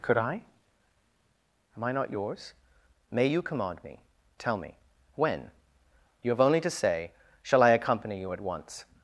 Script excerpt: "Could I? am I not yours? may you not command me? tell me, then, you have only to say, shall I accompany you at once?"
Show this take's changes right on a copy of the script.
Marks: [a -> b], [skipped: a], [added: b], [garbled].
"Could I? am I not yours? may you [skipped: not] command me? tell me, [then, -> when] you have only to say, shall I accompany you at once?"